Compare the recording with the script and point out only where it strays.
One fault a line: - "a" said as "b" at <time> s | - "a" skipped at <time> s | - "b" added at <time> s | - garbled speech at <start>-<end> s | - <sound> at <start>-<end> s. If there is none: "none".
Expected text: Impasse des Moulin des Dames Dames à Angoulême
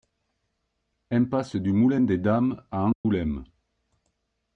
- "des" said as "du" at 1.6 s
- "Dames" skipped at 2.6 s
- dropout at 2.9-3.0 s